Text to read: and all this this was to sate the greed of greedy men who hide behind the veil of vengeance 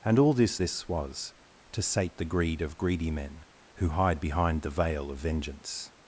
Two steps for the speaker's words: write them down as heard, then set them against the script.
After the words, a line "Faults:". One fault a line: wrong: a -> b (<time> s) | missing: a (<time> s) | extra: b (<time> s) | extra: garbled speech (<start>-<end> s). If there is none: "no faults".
and all this this was to sate the greed of greedy men who hide behind the veil of vengeance
Faults:
no faults